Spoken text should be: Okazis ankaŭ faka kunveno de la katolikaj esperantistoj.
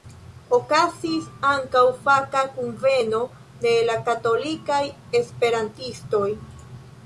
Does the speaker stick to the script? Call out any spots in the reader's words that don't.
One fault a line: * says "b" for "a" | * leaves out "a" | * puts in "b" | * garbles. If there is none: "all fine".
all fine